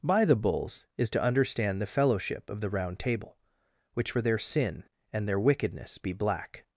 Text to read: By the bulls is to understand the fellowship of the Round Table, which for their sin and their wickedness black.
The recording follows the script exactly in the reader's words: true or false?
false